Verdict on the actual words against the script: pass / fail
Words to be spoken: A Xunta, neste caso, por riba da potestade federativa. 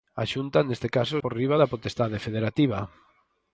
pass